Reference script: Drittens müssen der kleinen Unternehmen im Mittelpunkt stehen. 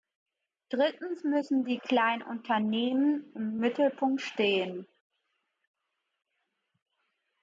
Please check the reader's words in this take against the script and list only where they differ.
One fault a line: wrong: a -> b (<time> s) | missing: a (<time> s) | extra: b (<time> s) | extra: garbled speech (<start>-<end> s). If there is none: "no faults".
wrong: der -> die (1.6 s)